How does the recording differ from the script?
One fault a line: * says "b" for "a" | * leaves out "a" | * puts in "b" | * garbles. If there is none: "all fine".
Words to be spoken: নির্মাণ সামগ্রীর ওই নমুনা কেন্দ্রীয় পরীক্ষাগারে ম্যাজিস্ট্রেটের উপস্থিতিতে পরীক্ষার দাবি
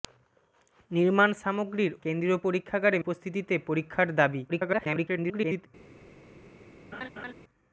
* leaves out "ওই নমুনা"
* leaves out "ম্যাজিস্ট্রেটের"
* garbles